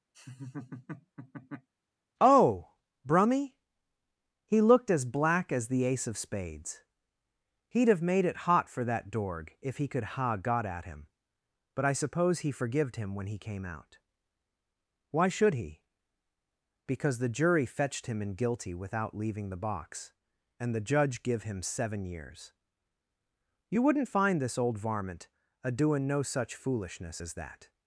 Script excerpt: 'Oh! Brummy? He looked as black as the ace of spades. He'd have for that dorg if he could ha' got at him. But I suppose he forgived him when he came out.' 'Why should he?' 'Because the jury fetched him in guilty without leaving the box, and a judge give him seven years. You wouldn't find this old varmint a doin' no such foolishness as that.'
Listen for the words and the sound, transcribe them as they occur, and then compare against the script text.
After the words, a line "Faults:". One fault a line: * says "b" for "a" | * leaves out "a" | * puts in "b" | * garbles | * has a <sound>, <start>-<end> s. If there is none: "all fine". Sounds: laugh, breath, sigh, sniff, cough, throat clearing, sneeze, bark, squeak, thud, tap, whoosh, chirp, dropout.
'Oh! Brummy? He looked as black as the ace of spades. He'd have made it hot for that dorg if he could ha' got at him. But I suppose he forgived him when he came out.' 'Why should he?' 'Because the jury fetched him in guilty without leaving the box, and the judge give him seven years. You wouldn't find this old varmint a doin' no such foolishness as that.'
Faults:
* has a laugh, 0.1-1.7 s
* puts in "made it hot"
* says "the" for "a"